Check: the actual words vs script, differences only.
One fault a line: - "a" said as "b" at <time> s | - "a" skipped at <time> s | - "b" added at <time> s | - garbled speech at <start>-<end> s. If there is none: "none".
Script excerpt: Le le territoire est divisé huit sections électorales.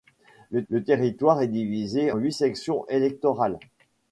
none